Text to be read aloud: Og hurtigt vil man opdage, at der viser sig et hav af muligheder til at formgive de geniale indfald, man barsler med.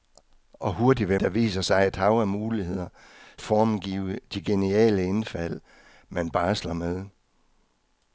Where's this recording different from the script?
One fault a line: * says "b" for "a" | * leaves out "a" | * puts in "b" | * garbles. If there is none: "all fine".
* leaves out "man opdage at"
* leaves out "til at"